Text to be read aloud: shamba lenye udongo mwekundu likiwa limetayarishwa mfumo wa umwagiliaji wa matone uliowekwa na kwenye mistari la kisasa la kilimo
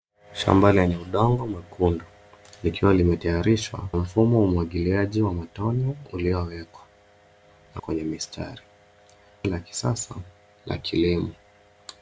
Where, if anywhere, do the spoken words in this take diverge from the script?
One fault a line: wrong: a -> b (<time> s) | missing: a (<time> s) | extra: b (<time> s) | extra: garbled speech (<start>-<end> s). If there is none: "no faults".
no faults